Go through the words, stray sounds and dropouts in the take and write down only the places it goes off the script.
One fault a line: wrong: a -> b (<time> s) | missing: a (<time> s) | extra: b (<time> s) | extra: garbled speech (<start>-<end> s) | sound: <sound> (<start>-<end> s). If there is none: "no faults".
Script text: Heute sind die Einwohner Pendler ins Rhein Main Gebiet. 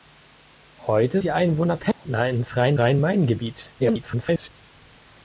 missing: sind (1.2 s)
sound: dropout (1.9-2.1 s)
extra: Rhein (2.8 s)
extra: garbled speech (3.8-4.5 s)